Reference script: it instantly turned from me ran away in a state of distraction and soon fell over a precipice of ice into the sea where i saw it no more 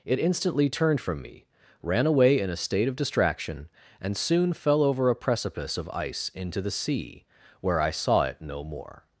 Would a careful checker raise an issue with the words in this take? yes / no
no